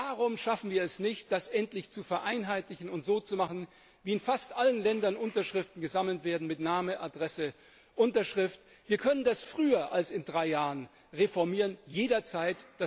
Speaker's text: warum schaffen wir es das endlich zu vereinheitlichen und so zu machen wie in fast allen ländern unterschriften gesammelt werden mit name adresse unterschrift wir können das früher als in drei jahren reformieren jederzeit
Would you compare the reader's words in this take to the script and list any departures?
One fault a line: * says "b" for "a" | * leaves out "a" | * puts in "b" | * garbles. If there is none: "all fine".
* puts in "nicht"